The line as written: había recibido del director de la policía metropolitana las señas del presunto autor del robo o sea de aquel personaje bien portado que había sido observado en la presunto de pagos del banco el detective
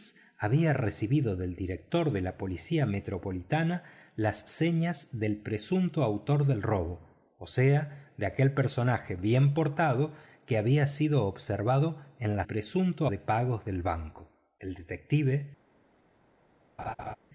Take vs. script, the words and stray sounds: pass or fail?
fail